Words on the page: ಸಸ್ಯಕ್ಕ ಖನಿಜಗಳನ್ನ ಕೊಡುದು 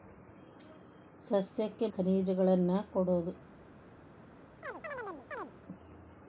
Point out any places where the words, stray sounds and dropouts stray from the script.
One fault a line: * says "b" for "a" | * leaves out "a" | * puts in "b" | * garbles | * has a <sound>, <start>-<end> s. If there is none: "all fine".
* has a chirp, 4.6-5.5 s